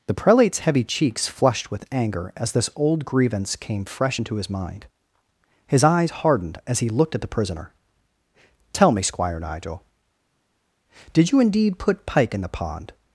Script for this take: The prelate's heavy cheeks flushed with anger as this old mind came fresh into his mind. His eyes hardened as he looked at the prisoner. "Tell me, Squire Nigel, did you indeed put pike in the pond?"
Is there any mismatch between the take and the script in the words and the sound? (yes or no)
yes